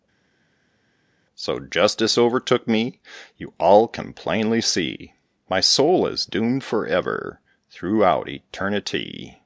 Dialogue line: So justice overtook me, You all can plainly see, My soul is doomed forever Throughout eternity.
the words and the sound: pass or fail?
pass